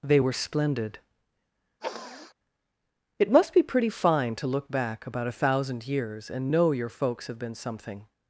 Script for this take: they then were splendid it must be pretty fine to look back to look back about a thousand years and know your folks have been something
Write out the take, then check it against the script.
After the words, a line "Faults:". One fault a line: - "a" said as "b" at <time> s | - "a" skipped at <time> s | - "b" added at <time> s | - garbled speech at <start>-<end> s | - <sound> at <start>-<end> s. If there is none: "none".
they were splendid it must be pretty fine to look back about a thousand years and know your folks have been something
Faults:
- "then" skipped at 0.2 s
- sniff at 1.8-2.3 s
- "to look back" skipped at 5.0 s